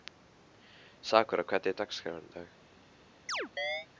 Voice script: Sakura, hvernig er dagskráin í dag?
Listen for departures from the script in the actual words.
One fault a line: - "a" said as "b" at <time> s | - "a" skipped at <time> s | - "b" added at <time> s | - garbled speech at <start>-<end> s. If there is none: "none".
none